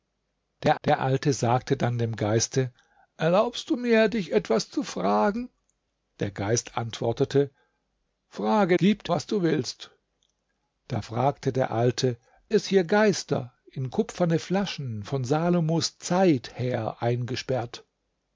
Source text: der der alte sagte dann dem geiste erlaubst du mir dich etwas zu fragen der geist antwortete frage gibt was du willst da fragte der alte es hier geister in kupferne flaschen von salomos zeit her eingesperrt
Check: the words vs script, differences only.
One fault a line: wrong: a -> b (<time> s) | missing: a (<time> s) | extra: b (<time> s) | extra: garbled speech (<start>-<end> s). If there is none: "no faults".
no faults